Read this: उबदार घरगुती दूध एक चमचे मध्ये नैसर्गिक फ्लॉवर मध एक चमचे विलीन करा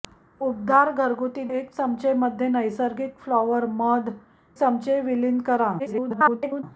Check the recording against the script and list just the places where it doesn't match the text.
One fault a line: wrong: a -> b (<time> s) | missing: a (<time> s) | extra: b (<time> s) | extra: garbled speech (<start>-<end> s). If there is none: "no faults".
missing: दूध (1.4 s)
missing: एक (4.1 s)
extra: garbled speech (5.8-6.6 s)